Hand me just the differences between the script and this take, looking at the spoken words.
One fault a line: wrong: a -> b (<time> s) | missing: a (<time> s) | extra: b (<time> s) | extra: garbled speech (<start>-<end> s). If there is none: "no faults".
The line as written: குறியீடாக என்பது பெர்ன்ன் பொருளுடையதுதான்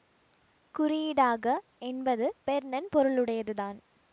no faults